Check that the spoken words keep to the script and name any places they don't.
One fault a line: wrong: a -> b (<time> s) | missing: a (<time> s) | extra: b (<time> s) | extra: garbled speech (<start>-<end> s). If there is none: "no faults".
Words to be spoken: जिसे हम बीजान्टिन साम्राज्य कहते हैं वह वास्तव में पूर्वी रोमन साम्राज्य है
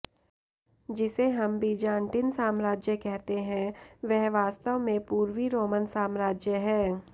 no faults